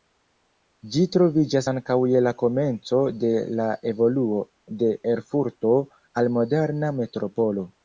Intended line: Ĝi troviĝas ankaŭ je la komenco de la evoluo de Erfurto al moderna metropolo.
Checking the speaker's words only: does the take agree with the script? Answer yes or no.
yes